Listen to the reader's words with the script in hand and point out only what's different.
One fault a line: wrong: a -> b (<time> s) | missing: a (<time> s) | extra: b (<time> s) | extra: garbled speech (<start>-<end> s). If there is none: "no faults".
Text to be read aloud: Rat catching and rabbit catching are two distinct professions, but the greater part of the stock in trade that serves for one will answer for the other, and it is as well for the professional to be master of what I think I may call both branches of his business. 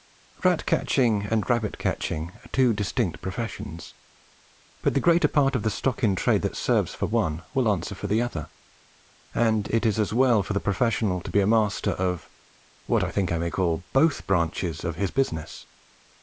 no faults